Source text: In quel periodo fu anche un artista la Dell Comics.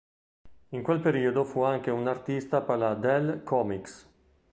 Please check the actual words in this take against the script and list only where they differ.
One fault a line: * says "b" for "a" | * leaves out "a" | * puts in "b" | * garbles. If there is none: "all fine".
* puts in "per"